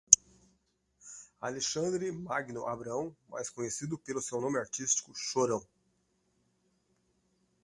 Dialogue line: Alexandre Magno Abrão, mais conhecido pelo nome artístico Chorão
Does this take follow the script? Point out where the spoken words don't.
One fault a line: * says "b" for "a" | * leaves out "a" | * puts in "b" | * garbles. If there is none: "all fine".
* puts in "seu"